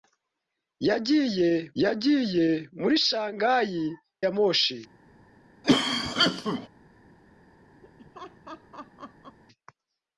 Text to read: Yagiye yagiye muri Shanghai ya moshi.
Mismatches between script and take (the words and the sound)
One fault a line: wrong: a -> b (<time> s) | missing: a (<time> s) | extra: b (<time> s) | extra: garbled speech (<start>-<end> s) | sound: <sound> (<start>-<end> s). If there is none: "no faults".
sound: cough (5.6-6.7 s)
sound: laugh (7.8-9.4 s)